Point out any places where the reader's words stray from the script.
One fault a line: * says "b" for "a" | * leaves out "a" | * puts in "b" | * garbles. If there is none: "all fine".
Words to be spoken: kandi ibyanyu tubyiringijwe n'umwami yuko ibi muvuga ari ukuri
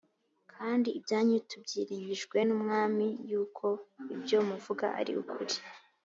* says "ibyo" for "ibi"